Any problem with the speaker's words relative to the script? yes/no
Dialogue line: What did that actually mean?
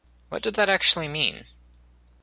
no